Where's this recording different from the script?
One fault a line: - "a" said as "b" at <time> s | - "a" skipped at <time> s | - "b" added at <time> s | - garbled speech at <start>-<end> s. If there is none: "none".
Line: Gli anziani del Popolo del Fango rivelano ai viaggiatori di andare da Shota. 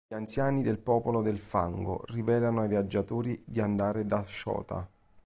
none